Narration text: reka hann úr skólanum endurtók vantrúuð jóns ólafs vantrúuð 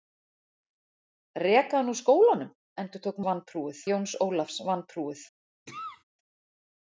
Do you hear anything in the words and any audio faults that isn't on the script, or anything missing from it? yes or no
yes